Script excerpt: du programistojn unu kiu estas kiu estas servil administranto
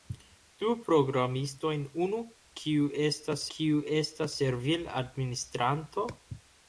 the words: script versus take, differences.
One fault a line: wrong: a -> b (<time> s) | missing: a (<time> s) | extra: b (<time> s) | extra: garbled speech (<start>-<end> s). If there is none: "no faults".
no faults